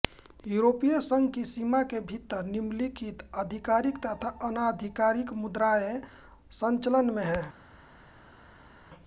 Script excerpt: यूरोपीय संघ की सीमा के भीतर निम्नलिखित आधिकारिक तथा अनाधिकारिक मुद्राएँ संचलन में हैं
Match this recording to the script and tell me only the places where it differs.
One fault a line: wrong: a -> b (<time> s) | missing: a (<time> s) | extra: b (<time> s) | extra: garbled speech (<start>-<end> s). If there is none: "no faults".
no faults